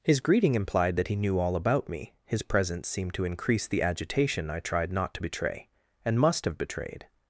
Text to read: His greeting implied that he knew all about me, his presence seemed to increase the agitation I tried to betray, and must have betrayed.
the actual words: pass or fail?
fail